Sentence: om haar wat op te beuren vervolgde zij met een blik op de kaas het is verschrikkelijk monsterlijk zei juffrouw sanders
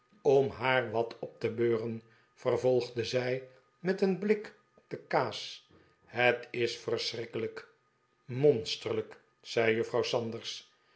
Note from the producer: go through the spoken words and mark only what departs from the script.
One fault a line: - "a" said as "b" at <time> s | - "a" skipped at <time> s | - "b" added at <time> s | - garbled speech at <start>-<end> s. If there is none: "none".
none